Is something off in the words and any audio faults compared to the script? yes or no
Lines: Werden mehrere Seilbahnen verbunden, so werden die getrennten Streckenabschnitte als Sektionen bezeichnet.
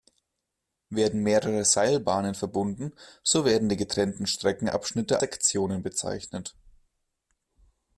yes